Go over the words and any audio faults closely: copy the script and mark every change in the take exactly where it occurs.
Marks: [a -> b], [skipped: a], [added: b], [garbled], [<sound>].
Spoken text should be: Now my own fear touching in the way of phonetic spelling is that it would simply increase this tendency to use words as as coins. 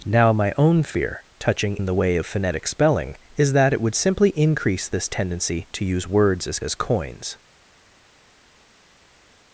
Now my own fear touching in the way of phonetic spelling is that it would simply increase this tendency to use words as as coins.